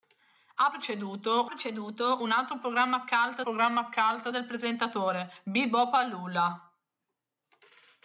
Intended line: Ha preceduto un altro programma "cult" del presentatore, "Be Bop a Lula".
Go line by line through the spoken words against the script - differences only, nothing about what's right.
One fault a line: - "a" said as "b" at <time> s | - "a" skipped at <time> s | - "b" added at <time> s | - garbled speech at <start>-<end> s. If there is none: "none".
- "preceduto" added at 1.5 s
- "programma cult" added at 3.4 s